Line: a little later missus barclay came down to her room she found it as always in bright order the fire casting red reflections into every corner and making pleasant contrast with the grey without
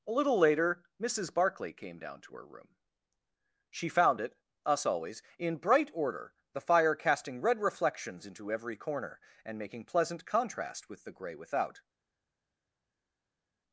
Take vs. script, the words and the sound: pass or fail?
fail